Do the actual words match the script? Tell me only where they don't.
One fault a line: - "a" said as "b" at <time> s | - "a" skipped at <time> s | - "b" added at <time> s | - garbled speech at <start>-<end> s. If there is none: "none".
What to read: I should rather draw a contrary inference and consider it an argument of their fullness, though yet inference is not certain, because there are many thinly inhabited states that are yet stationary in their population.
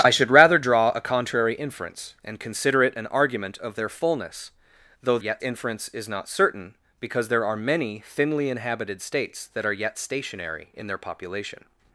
none